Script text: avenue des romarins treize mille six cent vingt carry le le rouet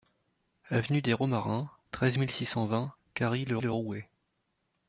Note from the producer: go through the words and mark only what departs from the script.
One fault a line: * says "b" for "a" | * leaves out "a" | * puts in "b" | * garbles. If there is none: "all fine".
all fine